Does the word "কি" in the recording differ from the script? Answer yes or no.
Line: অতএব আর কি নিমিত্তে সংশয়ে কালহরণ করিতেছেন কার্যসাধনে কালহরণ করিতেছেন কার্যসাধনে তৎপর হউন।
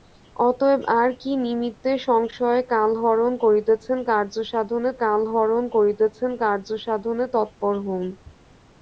no